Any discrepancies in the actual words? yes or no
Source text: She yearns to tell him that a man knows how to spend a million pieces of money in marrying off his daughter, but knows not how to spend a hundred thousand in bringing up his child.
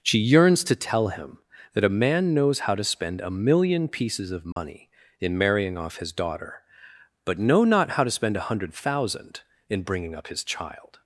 yes